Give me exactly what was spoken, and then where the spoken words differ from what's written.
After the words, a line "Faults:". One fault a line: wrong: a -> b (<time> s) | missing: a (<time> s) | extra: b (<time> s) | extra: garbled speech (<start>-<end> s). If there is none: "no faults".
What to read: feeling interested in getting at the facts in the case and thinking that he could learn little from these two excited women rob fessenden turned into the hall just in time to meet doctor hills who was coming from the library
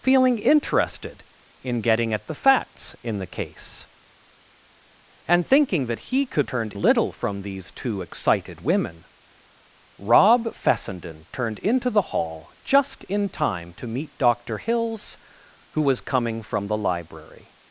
feeling interested in getting at the facts in the case and thinking that he could turned little from these two excited women rob fessenden turned into the hall just in time to meet doctor hills who was coming from the library
Faults:
wrong: learn -> turned (6.5 s)